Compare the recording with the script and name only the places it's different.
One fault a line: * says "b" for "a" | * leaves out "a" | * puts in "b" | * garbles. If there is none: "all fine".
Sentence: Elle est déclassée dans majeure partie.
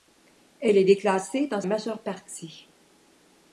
all fine